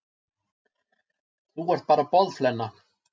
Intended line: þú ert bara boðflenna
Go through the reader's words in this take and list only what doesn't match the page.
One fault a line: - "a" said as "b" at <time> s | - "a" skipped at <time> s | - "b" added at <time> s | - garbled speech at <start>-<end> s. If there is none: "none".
none